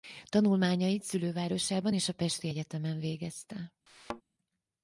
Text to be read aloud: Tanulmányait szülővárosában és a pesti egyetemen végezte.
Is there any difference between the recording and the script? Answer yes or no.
no